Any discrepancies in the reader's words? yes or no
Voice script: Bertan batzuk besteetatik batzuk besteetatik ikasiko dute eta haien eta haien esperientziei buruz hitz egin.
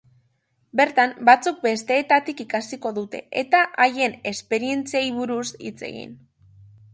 yes